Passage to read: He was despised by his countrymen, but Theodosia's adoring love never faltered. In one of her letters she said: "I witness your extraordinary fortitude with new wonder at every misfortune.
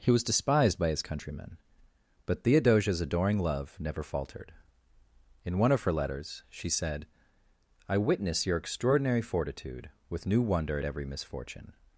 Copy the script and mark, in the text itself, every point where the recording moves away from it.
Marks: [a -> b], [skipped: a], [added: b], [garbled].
He was despised by his countrymen, but Theodosia's adoring love never faltered. In one of her letters she said: "I witness your extraordinary fortitude with new wonder at every misfortune.